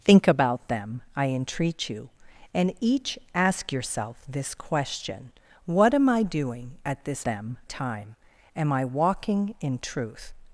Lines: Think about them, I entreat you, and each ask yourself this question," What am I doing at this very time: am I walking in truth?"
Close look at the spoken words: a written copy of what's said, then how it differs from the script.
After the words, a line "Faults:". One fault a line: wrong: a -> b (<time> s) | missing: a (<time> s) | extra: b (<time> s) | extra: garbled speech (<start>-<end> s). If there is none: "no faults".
Think about them, I entreat you, and each ask yourself this question," What am I doing at this them time: am I walking in truth?"
Faults:
wrong: very -> them (7.2 s)